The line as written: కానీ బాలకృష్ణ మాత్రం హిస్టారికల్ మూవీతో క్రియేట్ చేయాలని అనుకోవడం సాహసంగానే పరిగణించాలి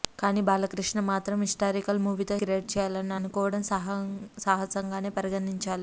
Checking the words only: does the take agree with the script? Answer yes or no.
yes